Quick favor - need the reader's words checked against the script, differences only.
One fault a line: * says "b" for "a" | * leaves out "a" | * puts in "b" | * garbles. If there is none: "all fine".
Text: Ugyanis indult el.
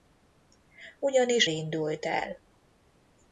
all fine